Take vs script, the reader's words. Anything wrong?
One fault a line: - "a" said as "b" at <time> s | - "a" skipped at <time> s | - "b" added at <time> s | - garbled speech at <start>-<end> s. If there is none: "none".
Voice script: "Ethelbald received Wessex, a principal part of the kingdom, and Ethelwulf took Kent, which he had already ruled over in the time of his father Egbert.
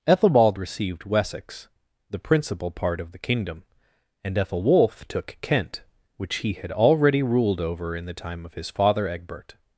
- "a" said as "the" at 2.1 s